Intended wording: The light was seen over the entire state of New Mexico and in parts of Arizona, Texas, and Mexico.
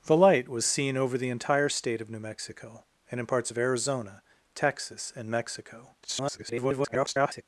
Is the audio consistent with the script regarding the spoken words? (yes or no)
no